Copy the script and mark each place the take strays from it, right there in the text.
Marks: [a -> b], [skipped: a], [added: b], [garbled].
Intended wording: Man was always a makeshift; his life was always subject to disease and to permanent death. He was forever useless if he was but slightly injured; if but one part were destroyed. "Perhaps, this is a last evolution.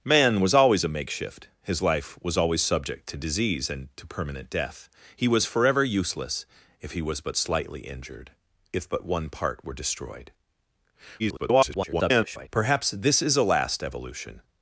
Man was always a makeshift; his life was always subject to disease and to permanent death. He was forever useless if he was but slightly injured; if but one part were destroyed. [garbled] "Perhaps, this is a last evolution.